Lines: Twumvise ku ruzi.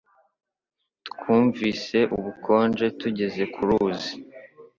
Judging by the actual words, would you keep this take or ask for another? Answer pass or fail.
fail